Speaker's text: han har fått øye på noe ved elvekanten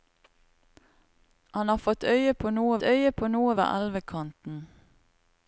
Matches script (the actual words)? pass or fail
fail